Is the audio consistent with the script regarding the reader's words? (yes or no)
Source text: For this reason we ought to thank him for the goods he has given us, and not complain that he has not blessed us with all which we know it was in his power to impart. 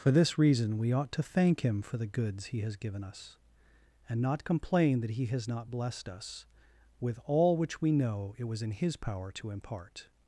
yes